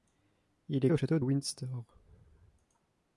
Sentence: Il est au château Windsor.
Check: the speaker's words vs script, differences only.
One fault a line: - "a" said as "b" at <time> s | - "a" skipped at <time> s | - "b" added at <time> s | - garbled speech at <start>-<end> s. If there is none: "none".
none